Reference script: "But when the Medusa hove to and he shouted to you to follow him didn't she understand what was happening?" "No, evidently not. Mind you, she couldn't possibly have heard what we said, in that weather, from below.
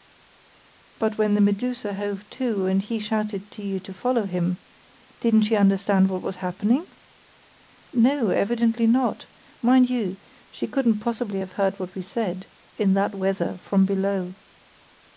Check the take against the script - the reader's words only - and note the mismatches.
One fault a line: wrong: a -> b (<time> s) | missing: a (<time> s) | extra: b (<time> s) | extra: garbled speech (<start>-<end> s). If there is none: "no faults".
no faults